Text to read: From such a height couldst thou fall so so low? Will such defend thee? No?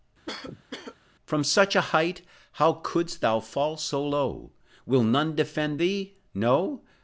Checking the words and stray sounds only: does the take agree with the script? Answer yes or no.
no